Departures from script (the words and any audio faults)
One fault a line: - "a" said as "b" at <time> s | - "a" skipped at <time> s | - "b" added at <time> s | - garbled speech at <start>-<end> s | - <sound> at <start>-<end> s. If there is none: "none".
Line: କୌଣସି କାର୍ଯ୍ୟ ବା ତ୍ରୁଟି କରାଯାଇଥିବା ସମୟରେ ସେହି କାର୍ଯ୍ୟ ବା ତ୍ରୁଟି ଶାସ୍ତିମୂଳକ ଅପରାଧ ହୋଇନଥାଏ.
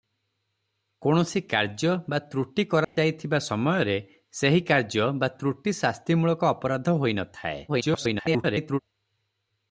- dropout at 2.8-3.0 s
- garbled speech at 7.7-8.8 s